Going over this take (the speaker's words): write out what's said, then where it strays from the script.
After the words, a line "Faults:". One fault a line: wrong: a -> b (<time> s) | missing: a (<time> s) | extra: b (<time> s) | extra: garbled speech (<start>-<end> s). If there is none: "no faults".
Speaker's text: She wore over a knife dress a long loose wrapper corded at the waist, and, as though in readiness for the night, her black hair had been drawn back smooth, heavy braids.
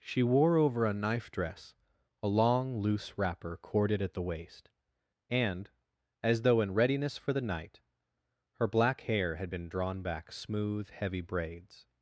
She wore over a knife dress a long loose wrapper corded at the waist, and, as though in readiness for the night, her black hair had been drawn back smooth, heavy braids.
Faults:
no faults